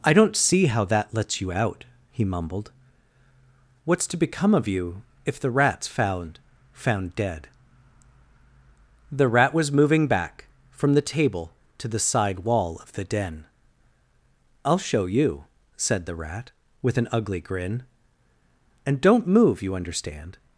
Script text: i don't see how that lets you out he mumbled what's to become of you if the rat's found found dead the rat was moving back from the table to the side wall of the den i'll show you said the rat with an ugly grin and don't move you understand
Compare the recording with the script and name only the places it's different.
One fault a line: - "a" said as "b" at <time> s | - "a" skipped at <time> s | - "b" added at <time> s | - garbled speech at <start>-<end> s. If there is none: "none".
none